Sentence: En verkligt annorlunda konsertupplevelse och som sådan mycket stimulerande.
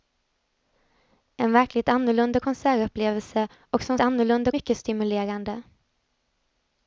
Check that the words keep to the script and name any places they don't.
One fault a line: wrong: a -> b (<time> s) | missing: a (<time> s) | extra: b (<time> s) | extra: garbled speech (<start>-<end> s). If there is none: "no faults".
wrong: sådan -> annorlunda (4.0 s)